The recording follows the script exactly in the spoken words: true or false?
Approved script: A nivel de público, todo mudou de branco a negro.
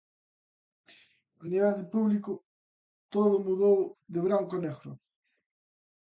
true